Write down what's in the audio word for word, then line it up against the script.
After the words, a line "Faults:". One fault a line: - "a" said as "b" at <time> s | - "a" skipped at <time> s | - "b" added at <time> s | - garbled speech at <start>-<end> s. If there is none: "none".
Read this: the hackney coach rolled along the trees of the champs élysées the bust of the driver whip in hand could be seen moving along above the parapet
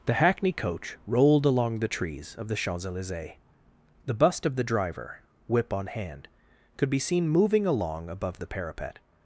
the hackney coach rolled along the trees of the champs élysées the bust of the driver whip on hand could be seen moving along above the parapet
Faults:
- "in" said as "on" at 5.7 s